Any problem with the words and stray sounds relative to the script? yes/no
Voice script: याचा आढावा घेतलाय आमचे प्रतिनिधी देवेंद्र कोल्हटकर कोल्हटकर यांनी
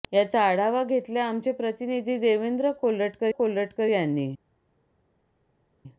no